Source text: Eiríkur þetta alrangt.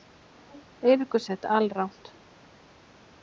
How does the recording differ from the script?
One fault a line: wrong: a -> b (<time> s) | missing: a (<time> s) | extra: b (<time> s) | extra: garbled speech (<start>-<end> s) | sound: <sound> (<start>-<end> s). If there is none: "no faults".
no faults